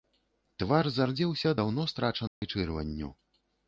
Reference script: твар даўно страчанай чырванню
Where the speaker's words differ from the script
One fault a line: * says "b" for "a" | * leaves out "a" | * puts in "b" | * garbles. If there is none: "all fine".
* puts in "зардзеўся"